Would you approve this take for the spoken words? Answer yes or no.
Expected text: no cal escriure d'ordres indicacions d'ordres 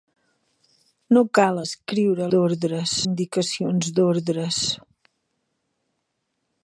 yes